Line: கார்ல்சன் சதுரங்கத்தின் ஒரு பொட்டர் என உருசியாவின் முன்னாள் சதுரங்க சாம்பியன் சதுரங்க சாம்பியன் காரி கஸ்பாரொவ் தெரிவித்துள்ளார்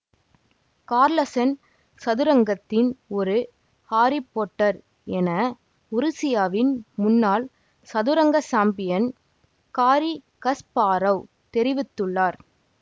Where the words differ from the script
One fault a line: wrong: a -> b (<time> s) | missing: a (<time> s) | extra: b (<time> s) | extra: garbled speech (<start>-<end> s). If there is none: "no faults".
extra: ஹாரி (3.9 s)
missing: சதுரங்க சாம்பியன் (9.1 s)